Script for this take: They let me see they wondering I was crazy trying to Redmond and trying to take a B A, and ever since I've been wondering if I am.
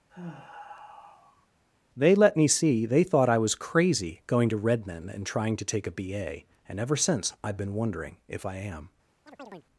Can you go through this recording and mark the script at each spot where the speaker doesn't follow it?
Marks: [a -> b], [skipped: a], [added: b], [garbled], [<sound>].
[sigh] They let me see they [wondering -> thought] I was crazy [trying -> going] to Redmond and trying to take a B A, and ever since I've been wondering if I am. [chirp]